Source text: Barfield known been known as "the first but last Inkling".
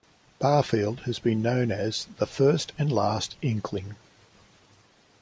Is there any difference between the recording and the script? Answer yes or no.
yes